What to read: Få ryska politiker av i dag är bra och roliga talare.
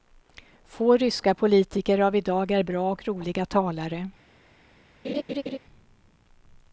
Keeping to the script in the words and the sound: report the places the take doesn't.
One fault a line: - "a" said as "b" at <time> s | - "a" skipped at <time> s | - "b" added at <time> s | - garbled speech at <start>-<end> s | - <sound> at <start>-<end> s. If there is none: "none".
- laugh at 5.0-5.6 s